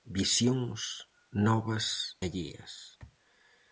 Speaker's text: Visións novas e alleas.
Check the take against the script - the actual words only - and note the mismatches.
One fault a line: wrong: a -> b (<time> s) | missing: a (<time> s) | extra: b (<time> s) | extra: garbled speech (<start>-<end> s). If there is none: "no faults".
missing: e (2.2 s)